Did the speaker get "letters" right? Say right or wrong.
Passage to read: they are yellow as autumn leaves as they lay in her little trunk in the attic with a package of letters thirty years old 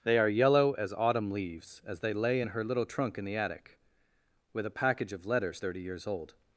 right